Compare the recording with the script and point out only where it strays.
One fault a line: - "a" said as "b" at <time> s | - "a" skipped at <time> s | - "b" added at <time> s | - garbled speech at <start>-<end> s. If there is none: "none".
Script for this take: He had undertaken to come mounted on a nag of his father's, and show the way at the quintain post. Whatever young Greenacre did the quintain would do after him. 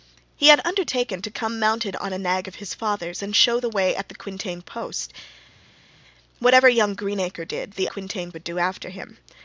none